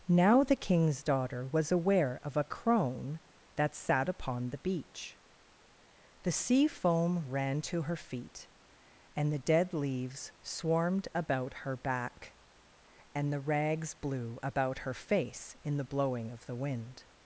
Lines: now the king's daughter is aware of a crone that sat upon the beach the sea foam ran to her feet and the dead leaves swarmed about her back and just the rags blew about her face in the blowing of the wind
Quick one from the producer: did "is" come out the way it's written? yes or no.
no